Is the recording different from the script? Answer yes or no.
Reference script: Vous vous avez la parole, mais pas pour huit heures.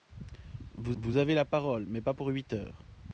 no